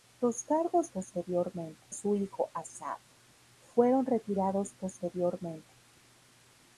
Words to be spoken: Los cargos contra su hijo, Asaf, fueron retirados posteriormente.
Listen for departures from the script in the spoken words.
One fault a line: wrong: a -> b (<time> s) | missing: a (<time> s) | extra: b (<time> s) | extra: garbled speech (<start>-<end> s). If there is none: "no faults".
wrong: contra -> posteriormente (0.9 s)